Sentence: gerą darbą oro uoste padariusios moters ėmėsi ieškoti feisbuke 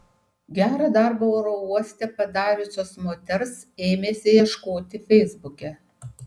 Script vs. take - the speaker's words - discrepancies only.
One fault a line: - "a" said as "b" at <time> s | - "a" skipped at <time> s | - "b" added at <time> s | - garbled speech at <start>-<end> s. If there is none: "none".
none